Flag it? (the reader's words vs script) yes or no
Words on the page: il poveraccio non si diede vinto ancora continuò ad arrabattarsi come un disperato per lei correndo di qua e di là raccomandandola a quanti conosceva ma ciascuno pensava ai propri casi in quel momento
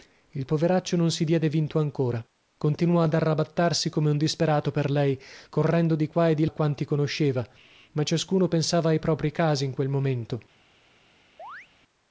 yes